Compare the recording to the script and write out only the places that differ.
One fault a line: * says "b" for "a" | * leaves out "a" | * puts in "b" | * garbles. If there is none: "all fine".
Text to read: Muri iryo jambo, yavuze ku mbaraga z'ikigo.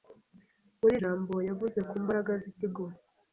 * leaves out "iryo"